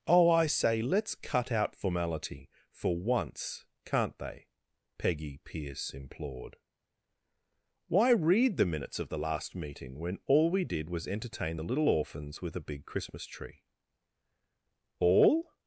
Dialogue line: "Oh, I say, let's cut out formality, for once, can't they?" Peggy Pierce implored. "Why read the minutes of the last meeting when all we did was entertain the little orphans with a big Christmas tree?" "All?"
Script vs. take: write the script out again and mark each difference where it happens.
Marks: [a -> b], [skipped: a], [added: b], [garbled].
"Oh, I say, let's cut out formality, for once, can't they?" Peggy Pierce implored. "Why read the minutes of the last meeting when all we did was entertain the little orphans with a big Christmas tree?" "All?"